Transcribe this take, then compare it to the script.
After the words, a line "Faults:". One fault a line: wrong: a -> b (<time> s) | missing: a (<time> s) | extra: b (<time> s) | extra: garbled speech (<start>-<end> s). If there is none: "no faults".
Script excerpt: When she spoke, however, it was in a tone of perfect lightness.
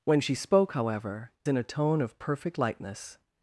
When she spoke, however, in a tone of perfect lightness.
Faults:
missing: it was (1.3 s)